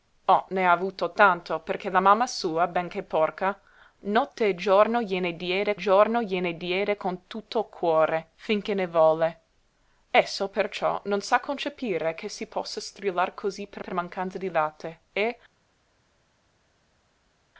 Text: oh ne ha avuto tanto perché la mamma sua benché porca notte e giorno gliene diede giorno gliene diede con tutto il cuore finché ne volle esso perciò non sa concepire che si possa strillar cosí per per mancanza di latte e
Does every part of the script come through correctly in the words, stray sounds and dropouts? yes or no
yes